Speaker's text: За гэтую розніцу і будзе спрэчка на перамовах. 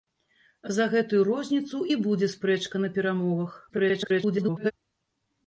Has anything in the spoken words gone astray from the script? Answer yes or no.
yes